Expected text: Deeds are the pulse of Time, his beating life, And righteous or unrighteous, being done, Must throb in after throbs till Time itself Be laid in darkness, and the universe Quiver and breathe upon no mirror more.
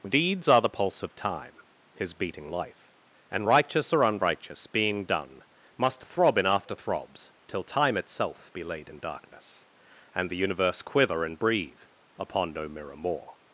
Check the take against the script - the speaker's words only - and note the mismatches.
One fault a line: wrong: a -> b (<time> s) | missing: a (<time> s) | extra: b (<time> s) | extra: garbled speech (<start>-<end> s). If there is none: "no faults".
no faults